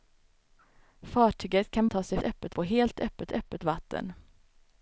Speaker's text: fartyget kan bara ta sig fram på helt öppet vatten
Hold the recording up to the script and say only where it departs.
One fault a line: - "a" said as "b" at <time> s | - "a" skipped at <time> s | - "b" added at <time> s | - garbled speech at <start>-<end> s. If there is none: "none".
- "bara" skipped at 1.9 s
- "fram" said as "öppet" at 2.2 s
- "öppet" added at 3.3 s